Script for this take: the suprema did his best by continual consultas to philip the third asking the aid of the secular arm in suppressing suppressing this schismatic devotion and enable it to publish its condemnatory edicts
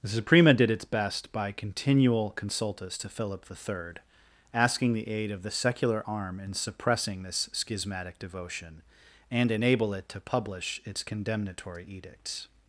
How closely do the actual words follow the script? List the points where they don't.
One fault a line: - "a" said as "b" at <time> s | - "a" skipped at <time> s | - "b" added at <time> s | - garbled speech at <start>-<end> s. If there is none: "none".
- "his" said as "its" at 0.7 s
- "suppressing" skipped at 7.2 s